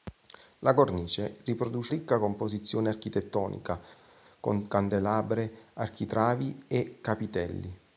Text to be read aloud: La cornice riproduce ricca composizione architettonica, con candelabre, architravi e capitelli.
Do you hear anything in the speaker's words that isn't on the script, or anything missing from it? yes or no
no